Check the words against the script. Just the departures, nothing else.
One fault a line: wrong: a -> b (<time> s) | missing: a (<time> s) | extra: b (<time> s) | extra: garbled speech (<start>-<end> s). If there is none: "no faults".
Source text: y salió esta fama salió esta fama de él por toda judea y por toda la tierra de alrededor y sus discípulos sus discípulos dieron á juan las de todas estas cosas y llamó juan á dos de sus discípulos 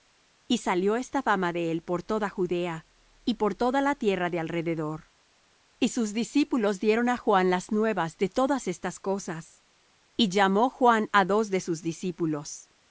missing: salió esta fama (1.5 s)
missing: sus discípulos (6.8 s)
extra: nuevas (7.7 s)